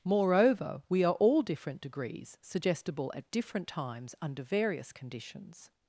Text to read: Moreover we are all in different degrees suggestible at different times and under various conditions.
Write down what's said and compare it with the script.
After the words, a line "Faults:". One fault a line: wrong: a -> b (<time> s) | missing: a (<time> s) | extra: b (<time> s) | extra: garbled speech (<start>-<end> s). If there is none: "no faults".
Moreover we are all different degrees suggestible at different times under various conditions.
Faults:
missing: in (1.4 s)
missing: and (4.2 s)